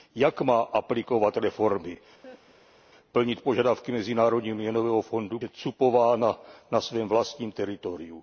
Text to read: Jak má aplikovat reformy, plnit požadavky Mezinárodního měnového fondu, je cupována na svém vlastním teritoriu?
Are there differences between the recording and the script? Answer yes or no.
no